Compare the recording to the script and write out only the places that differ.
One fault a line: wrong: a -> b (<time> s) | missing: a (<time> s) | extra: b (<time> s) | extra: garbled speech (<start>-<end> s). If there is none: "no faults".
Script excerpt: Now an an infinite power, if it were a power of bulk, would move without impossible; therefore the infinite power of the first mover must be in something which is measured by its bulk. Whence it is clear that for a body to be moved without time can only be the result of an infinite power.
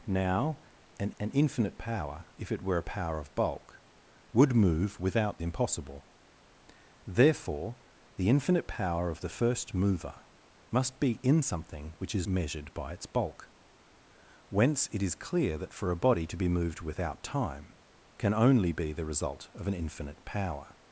no faults